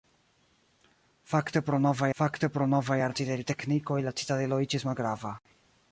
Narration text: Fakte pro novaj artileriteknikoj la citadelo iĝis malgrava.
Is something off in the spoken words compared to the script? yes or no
yes